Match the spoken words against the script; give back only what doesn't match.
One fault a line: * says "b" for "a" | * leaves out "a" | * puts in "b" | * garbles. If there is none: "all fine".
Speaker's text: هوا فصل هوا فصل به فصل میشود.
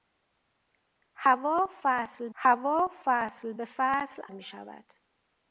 all fine